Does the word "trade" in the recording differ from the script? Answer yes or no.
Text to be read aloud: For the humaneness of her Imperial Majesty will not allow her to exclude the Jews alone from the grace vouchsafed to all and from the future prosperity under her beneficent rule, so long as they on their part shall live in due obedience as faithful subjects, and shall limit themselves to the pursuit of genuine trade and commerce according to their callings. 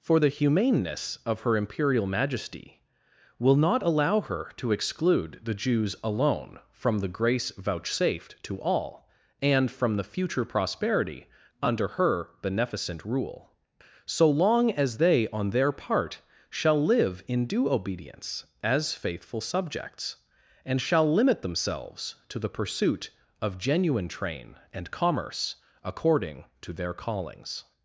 yes